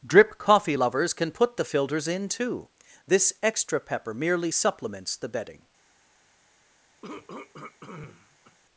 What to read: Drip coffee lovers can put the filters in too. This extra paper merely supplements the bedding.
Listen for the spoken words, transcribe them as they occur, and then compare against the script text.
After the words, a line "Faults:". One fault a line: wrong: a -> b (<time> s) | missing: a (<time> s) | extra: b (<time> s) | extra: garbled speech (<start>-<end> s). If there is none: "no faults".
Drip coffee lovers can put the filters in too. This extra pepper merely supplements the bedding.
Faults:
wrong: paper -> pepper (3.8 s)